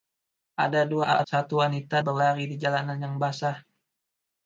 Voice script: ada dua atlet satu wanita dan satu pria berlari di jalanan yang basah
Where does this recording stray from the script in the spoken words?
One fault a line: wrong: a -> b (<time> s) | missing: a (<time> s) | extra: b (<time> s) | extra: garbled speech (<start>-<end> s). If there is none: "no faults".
missing: atlet (1.2 s)
missing: dan satu pria (2.0 s)